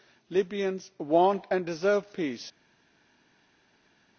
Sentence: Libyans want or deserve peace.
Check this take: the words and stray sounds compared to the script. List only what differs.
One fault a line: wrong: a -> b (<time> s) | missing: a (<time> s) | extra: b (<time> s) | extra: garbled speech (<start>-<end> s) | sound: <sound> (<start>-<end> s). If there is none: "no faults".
wrong: or -> and (1.5 s)